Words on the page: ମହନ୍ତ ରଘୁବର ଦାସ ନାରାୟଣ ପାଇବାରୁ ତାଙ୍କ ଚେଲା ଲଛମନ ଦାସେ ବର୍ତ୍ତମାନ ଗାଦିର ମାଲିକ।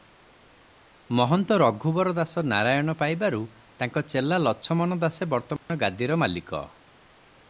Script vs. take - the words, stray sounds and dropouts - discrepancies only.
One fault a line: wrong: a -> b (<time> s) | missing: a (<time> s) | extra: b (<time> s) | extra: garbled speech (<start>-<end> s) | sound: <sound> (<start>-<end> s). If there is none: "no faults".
sound: dropout (5.6-5.7 s)